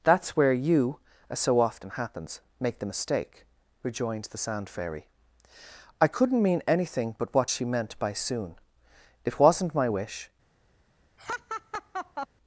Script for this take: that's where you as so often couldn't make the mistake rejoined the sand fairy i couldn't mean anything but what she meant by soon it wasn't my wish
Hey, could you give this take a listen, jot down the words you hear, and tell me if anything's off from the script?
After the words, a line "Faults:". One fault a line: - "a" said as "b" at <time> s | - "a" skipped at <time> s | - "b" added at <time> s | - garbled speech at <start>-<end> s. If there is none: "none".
that's where you as so often happens make the mistake rejoined the sand fairy i couldn't mean anything but what she meant by soon it wasn't my wish
Faults:
- "couldn't" said as "happens" at 1.9 s